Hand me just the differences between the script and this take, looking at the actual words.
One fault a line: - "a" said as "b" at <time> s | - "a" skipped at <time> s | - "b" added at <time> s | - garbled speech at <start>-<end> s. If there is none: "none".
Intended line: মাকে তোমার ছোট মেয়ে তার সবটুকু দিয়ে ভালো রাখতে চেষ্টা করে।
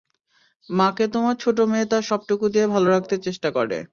none